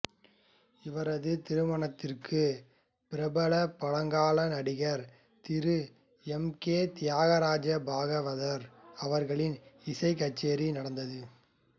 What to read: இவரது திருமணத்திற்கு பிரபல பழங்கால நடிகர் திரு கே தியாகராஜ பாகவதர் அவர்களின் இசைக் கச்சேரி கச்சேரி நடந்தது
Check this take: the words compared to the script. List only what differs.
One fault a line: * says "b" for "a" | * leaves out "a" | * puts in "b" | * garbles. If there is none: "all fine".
* puts in "எம்"
* leaves out "கச்சேரி"